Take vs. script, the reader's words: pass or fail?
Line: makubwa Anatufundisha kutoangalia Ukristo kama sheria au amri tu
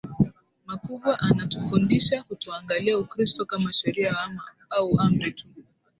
pass